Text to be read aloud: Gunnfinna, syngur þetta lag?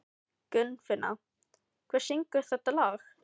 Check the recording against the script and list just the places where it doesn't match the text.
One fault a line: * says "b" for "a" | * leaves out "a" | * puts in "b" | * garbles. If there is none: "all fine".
* puts in "hver"